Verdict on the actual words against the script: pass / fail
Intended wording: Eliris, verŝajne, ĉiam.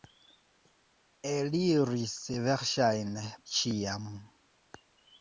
pass